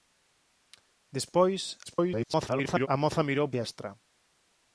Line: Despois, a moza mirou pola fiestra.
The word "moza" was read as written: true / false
true